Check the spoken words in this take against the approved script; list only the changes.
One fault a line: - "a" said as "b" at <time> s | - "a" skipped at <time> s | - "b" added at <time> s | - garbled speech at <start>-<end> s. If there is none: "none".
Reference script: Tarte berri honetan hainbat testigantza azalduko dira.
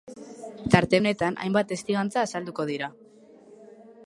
- "berri" skipped at 1.0 s